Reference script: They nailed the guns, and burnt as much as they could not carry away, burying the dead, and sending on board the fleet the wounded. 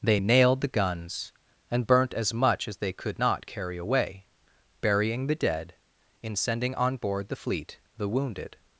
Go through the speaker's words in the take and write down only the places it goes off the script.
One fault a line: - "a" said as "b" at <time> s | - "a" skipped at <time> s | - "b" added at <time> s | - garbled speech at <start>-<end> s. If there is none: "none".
- "and" said as "in" at 6.2 s